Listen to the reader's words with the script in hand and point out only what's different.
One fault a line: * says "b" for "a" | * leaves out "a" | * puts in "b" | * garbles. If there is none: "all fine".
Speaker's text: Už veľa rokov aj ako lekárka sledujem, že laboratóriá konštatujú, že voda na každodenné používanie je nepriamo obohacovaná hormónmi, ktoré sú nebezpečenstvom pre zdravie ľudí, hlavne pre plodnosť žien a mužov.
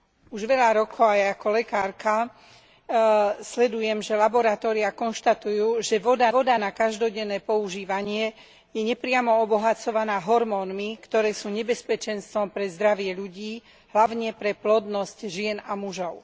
* puts in "voda"